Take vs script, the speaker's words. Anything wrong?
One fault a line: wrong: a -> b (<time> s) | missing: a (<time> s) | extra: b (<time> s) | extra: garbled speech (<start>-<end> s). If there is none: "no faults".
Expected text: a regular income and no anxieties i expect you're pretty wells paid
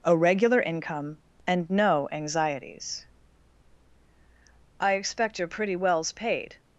no faults